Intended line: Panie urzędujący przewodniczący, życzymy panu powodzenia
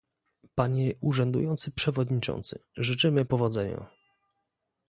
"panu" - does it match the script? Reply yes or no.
no